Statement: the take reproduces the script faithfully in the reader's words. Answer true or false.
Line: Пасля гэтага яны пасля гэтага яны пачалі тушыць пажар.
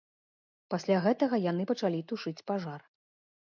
false